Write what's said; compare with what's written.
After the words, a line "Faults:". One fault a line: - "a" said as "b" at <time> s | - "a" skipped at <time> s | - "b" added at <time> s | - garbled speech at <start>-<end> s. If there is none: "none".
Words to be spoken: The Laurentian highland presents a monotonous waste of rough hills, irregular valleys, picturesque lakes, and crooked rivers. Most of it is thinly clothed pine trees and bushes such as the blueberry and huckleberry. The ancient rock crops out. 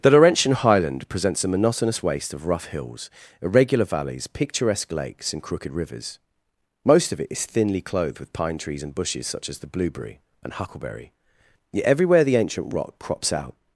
The Laurentian highland presents a monotonous waste of rough hills, irregular valleys, picturesque lakes, and crooked rivers. Most of it is thinly clothed with pine trees and bushes such as the blueberry and huckleberry. Yet everywhere the ancient rock crops out.
Faults:
- "with" added at 8.2 s
- "Yet everywhere" added at 11.7 s